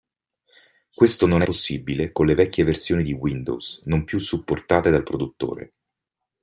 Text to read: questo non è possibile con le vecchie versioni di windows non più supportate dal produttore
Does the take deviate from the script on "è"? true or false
true